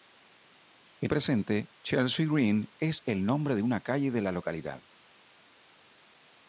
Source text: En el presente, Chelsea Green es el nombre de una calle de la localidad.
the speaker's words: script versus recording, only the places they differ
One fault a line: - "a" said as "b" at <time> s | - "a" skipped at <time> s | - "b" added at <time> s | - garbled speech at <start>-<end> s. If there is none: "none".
- "el" skipped at 1.1 s